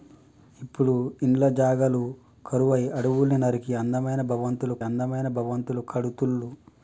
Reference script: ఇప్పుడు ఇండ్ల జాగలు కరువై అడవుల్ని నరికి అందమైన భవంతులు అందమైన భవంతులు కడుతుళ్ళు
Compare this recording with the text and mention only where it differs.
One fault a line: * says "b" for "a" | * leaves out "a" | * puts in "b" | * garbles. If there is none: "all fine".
all fine